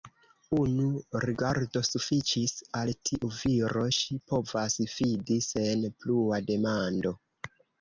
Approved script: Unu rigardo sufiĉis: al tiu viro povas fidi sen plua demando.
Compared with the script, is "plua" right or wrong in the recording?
right